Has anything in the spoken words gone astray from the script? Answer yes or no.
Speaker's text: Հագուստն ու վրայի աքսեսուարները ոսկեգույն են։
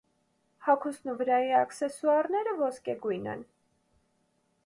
no